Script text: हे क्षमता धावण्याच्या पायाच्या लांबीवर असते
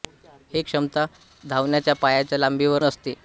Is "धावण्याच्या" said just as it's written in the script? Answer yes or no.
yes